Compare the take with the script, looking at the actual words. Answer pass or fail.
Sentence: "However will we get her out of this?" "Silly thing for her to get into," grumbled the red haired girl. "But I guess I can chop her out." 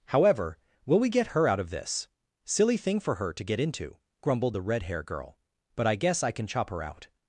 fail